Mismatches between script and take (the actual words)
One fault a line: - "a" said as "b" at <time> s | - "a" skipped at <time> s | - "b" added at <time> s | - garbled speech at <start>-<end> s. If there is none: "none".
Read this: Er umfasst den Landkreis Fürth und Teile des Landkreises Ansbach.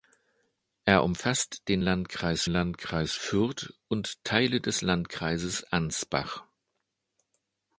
- "Landkreis" added at 2.5 s